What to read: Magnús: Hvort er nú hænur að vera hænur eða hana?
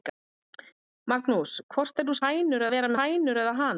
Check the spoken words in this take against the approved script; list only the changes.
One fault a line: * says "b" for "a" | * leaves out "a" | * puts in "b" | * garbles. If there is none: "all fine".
all fine